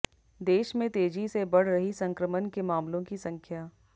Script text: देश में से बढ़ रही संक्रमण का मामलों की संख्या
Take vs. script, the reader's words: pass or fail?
fail